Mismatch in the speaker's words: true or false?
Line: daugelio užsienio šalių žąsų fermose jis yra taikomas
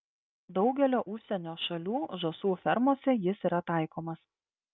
false